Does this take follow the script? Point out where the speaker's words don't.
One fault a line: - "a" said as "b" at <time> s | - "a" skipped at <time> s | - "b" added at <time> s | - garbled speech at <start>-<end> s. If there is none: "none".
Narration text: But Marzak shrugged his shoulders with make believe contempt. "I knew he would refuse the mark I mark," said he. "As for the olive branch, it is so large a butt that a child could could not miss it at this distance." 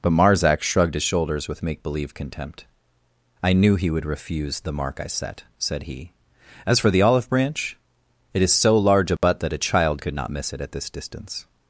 - "mark" said as "set" at 5.1 s
- "could" skipped at 10.1 s